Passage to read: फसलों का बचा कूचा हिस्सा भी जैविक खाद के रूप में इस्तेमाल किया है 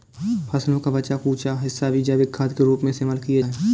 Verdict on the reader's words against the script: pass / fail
pass